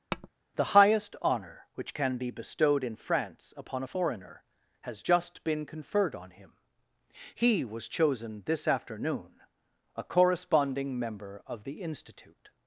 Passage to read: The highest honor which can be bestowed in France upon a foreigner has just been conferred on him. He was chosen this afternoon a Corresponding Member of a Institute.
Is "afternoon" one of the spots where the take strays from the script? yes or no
no